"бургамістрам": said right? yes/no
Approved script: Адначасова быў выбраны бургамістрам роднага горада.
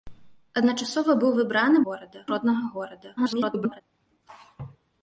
no